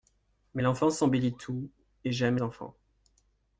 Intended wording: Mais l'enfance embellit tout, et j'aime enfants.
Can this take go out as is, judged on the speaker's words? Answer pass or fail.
pass